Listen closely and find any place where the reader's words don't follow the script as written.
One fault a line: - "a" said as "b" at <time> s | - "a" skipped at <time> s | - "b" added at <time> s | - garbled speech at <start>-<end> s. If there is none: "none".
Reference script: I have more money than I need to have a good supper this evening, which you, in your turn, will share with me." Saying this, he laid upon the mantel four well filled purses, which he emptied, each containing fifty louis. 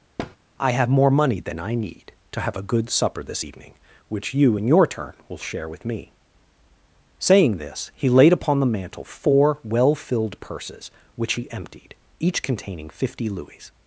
none